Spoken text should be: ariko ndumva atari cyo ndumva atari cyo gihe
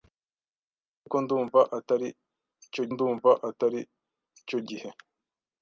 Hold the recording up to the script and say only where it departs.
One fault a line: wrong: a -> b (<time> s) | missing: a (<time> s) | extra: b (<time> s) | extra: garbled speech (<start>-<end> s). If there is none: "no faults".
no faults